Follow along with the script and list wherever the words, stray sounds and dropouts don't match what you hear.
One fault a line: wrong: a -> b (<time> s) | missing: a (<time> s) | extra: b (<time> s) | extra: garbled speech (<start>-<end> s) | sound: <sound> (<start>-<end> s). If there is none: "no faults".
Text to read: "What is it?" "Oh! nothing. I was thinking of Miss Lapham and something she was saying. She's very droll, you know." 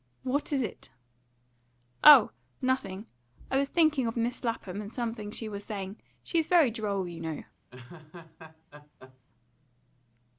sound: laugh (7.7-9.2 s)